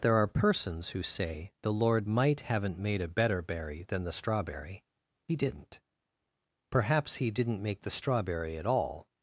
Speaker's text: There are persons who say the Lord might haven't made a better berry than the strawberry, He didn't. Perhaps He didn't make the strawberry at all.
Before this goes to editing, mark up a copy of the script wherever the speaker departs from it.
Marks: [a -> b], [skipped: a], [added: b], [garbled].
There are persons who say the Lord might haven't made a better berry than the strawberry, He didn't. Perhaps He didn't make the strawberry at all.